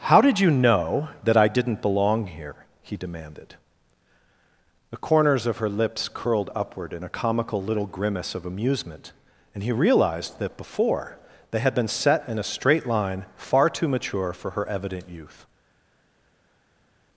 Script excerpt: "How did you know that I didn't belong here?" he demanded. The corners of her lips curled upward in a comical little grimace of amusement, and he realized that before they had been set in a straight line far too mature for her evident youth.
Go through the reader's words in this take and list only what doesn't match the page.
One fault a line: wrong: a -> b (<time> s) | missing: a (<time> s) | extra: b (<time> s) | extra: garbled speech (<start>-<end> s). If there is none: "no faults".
no faults